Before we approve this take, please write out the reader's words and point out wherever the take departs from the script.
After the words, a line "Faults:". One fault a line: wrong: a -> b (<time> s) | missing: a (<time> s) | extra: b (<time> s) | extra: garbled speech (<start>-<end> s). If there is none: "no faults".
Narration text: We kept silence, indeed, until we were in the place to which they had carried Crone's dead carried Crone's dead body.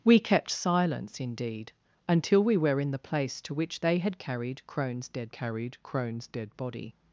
We kept silence, indeed, until we were in the place to which they had carried Crone's dead carried Crone's dead body.
Faults:
no faults